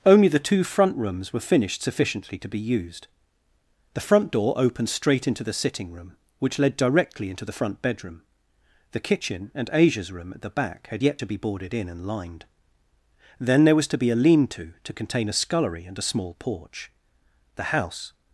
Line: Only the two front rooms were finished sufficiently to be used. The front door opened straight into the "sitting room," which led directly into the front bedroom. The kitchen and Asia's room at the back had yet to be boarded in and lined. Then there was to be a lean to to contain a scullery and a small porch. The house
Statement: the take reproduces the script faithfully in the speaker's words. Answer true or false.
true